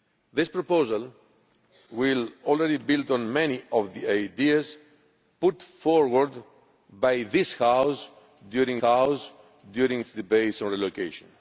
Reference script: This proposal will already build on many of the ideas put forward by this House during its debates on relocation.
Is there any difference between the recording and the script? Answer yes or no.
yes